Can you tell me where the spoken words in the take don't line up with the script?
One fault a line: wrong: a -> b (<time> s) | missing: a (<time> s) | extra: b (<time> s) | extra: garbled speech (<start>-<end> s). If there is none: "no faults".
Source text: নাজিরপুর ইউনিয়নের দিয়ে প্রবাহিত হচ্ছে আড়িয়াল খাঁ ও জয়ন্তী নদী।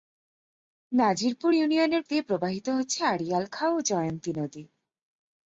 no faults